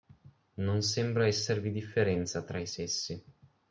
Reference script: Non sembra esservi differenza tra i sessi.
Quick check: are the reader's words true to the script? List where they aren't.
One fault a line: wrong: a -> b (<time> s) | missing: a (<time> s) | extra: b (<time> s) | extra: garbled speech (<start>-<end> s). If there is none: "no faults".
no faults